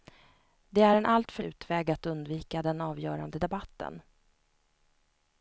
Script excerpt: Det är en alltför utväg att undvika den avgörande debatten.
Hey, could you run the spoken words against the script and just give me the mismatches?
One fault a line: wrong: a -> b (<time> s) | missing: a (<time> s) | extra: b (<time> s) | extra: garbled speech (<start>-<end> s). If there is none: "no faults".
no faults